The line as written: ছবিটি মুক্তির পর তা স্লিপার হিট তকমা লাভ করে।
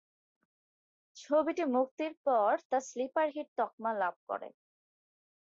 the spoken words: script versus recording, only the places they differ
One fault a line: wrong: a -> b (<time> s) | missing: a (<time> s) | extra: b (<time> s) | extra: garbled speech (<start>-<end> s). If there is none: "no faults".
no faults